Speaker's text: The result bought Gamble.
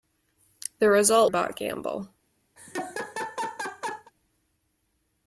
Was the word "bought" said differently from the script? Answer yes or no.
no